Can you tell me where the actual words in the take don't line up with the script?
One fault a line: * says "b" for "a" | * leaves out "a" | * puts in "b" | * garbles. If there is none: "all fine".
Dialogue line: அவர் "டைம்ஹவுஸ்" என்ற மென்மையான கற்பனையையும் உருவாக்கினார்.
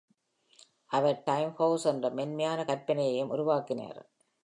all fine